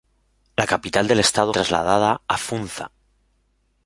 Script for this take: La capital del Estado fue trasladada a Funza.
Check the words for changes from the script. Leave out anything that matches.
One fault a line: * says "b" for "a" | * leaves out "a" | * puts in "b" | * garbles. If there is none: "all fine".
* leaves out "fue"